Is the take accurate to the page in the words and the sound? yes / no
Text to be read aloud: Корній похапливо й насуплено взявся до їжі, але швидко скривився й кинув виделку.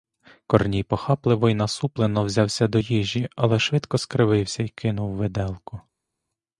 yes